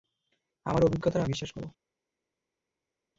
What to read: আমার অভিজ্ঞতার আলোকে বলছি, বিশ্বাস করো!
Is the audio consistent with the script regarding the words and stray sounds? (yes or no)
no